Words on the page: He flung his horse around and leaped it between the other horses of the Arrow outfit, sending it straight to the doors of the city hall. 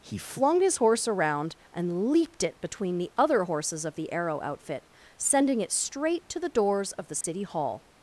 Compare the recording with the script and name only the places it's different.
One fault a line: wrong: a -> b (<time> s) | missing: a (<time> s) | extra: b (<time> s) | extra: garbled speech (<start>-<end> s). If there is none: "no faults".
no faults